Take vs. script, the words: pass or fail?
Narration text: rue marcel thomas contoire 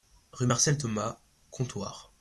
pass